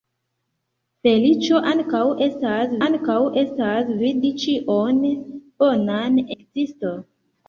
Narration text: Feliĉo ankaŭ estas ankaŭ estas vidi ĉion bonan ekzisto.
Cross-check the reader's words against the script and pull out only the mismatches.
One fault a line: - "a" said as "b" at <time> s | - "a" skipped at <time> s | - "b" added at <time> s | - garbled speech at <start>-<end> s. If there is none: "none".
none